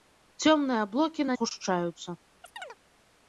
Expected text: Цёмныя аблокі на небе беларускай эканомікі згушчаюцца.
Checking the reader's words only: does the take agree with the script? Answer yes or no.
no